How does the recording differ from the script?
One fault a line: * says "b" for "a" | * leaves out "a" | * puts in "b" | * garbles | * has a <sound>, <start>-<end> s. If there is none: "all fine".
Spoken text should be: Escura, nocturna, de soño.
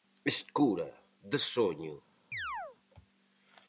* leaves out "nocturna"
* has a chirp, 2.3-2.8 s